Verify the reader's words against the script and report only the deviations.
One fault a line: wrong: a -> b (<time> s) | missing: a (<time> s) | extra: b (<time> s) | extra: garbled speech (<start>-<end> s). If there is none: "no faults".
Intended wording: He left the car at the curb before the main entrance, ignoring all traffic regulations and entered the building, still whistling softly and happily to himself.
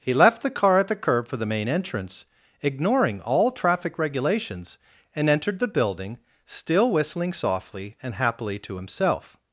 wrong: before -> for (1.3 s)